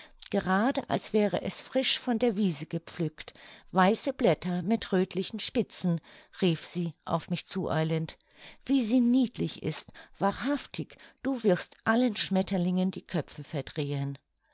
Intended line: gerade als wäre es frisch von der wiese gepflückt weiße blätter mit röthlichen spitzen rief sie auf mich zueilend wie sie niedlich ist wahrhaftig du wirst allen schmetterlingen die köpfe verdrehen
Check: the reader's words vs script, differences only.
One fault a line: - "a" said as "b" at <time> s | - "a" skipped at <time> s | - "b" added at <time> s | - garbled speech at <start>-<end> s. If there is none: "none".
none